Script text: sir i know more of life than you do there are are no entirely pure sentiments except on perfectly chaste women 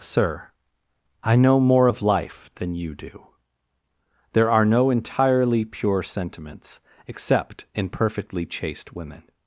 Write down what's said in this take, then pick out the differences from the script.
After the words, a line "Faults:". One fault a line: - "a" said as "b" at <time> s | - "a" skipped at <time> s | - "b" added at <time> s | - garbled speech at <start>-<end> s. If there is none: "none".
sir i know more of life than you do there are no entirely pure sentiments except in perfectly chaste women
Faults:
- "are" skipped at 4.6 s
- "on" said as "in" at 7.7 s